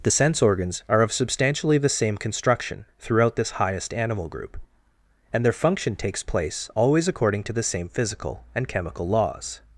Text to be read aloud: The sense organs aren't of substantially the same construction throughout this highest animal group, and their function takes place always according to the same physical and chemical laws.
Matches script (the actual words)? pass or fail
fail